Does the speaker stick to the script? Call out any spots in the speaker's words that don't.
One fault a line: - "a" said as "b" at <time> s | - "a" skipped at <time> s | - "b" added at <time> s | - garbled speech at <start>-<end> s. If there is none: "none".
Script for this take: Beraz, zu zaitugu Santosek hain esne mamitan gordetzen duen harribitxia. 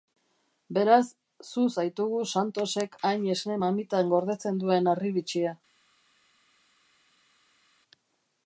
none